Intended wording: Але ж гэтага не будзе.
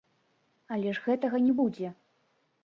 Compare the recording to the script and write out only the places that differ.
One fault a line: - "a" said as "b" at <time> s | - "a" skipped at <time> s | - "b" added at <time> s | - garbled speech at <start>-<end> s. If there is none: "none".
none